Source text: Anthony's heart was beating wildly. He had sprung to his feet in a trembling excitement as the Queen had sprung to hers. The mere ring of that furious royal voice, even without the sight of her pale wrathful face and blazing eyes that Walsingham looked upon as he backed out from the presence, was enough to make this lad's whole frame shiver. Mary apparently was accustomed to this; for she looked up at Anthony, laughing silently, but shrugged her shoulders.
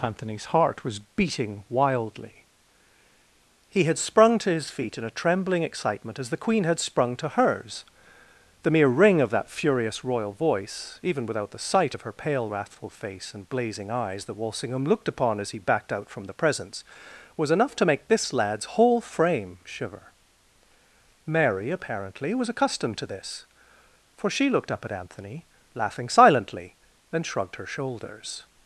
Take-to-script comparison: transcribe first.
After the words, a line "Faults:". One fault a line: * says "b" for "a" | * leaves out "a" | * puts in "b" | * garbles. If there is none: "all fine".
Anthony's heart was beating wildly. He had sprung to his feet in a trembling excitement as the Queen had sprung to hers. The mere ring of that furious royal voice, even without the sight of her pale wrathful face and blazing eyes that Walsingham looked upon as he backed out from the presence, was enough to make this lad's whole frame shiver. Mary apparently was accustomed to this; for she looked up at Anthony, laughing silently, and shrugged her shoulders.
Faults:
* says "and" for "but"